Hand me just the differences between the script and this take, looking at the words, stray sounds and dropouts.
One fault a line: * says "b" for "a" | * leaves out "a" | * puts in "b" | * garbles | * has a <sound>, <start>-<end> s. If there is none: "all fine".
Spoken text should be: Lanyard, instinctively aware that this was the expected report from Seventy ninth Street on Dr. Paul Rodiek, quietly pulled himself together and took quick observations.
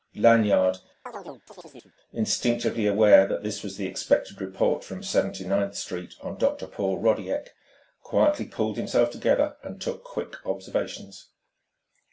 * has a chirp, 1.1-1.9 s